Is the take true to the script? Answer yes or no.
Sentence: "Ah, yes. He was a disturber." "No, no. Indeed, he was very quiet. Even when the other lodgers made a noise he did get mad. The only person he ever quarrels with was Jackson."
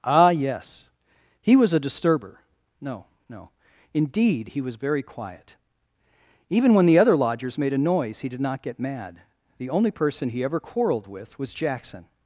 no